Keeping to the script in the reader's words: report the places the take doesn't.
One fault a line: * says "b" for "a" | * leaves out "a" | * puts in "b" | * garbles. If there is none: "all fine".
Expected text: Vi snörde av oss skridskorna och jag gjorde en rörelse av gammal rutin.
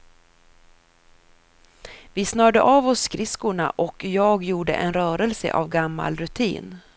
all fine